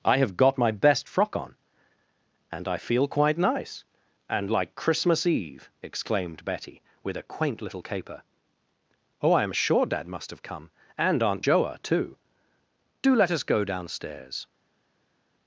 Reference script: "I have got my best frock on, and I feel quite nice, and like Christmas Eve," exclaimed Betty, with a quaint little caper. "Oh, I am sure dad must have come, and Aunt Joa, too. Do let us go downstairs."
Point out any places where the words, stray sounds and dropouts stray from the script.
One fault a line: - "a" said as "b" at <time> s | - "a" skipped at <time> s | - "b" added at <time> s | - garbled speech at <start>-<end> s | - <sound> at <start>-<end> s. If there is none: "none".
none